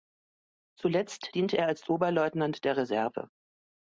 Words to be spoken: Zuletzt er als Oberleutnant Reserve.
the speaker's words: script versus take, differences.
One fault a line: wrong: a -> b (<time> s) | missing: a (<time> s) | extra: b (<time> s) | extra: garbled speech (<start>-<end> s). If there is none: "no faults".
extra: diente (1.3 s)
extra: der (2.6 s)